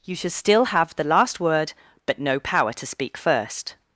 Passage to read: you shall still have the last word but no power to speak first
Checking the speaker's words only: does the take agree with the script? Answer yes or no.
no